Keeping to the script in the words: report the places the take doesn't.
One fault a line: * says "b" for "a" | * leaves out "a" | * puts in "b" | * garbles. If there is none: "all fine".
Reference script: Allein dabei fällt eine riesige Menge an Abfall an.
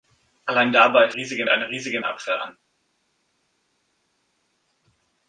* says "riesige" for "fällt"
* leaves out "Menge an"